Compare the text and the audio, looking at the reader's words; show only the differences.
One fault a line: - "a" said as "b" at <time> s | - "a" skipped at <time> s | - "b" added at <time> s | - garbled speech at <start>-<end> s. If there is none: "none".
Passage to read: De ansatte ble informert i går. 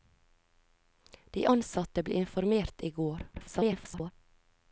- garbled speech at 3.3-4.1 s